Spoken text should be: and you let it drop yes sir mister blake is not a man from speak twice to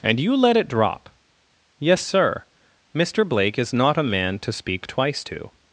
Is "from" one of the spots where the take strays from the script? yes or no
yes